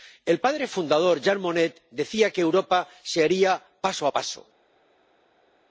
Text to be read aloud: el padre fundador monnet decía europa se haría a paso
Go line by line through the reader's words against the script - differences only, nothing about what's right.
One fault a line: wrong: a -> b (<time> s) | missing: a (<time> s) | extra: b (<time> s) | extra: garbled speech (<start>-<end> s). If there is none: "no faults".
extra: jean (1.2 s)
extra: que (2.3 s)
extra: paso (3.8 s)